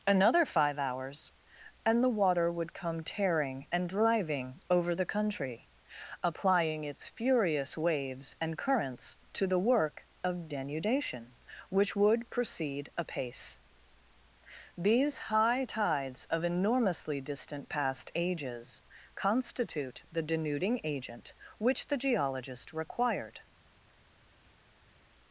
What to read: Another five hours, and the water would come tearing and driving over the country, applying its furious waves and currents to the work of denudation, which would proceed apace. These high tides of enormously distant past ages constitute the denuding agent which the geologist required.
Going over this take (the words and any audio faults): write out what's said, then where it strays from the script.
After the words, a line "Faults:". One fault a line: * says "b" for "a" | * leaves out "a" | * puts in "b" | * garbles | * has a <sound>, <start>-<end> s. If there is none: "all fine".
Another five hours, and the water would come tearing and driving over the country, applying its furious waves and currents to the work of denudation, which would proceed apace. These high tides of enormously distant past ages constitute the denuding agent which the geologist required.
Faults:
all fine